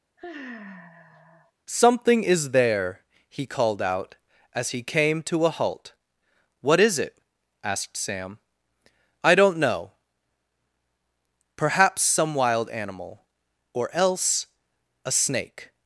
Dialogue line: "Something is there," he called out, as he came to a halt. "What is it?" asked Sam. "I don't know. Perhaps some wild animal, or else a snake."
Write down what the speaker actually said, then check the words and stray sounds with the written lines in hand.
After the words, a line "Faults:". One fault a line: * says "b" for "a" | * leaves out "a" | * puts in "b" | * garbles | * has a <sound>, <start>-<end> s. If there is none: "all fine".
"Something is there," he called out, as he came to a halt. "What is it?" asked Sam. "I don't know. Perhaps some wild animal, or else a snake."
Faults:
* has a sigh, 0.2-1.5 s